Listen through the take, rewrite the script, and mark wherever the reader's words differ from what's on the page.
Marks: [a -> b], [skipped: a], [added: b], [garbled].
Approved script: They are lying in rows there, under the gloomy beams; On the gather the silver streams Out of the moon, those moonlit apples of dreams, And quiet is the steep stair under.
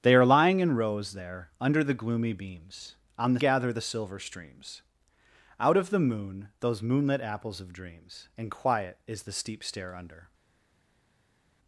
They are lying in rows there, under the gloomy beams; On the gather the silver streams Out of the moon, those moonlit apples of dreams, And quiet is the steep stair under.